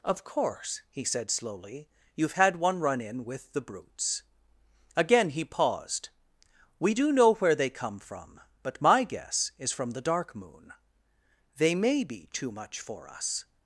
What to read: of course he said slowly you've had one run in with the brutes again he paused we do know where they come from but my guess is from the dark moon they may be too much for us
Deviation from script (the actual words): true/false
false